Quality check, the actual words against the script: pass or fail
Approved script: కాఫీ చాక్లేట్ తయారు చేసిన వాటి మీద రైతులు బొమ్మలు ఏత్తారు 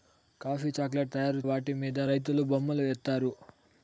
fail